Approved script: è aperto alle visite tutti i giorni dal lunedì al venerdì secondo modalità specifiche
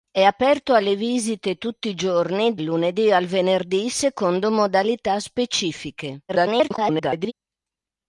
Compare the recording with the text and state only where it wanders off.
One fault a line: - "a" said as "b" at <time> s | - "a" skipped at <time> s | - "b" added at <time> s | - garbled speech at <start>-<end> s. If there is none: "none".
- "dal" skipped at 2.5 s
- garbled speech at 6.3-7.3 s